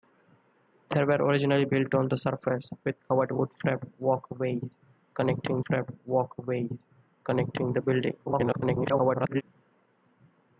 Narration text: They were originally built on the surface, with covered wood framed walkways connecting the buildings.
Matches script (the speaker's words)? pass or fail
fail